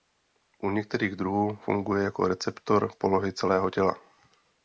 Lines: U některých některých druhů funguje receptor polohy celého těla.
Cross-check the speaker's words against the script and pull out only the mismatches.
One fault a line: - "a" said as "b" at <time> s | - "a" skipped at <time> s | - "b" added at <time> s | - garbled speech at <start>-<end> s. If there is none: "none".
- "některých" skipped at 1.1 s
- "jako" added at 2.0 s